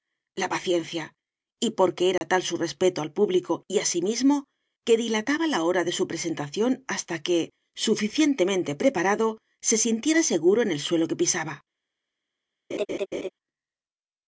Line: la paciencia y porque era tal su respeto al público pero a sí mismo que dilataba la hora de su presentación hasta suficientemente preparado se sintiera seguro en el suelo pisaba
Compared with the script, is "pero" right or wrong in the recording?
wrong